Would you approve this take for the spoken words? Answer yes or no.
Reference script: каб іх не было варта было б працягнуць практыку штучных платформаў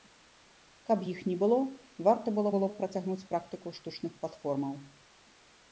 no